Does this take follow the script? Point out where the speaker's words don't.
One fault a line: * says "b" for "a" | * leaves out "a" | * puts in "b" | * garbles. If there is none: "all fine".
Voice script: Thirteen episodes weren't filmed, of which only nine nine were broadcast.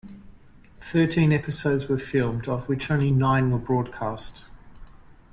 * says "were" for "weren't"
* leaves out "nine"